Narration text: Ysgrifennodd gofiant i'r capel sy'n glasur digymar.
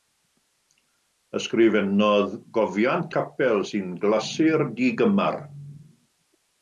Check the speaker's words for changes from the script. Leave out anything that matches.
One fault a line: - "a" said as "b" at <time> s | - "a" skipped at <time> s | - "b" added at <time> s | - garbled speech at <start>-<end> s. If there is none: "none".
- "i'r" skipped at 3.1 s